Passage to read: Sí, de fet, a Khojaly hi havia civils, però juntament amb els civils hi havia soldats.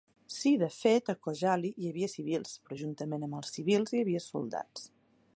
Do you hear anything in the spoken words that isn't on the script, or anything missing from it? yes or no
no